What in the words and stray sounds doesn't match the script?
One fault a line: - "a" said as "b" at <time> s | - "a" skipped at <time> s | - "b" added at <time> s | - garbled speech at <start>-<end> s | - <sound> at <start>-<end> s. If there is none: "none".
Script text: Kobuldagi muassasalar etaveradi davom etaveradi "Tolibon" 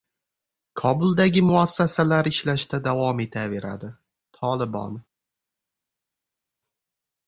- "etaveradi" said as "ishlashda" at 2.3 s